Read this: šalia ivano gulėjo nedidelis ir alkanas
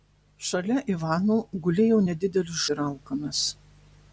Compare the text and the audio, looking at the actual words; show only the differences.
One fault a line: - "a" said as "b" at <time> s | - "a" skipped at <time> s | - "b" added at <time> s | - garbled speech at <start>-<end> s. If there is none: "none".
none